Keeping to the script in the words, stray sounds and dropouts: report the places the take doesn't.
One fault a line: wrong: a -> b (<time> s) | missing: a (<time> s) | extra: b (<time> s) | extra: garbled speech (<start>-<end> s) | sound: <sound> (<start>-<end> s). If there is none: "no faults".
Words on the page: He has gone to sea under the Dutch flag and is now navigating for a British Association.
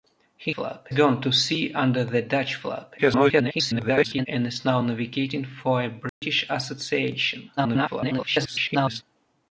wrong: has -> flag (0.5 s)
extra: garbled speech (3.0-4.3 s)
sound: dropout (6.1-6.2 s)
extra: garbled speech (7.6-9.0 s)